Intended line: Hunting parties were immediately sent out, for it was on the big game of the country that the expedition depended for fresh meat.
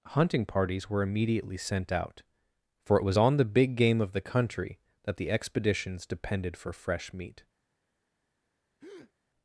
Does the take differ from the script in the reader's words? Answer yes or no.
yes